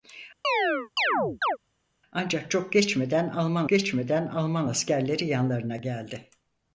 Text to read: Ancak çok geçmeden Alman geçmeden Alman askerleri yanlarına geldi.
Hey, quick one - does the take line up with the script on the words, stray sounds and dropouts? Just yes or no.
no